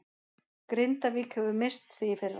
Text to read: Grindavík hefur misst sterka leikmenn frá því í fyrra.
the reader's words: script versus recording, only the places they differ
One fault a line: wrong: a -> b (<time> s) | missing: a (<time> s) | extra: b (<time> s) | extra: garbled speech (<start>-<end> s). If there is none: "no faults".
missing: sterka leikmenn frá (2.0 s)